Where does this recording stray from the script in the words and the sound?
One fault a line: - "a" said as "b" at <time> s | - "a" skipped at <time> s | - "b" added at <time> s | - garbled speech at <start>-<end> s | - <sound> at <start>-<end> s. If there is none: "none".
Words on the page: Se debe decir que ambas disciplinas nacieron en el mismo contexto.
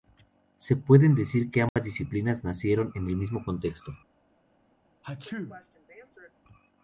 - "debe" said as "puede" at 0.8 s
- dropout at 1.7-1.8 s
- sneeze at 5.0-6.3 s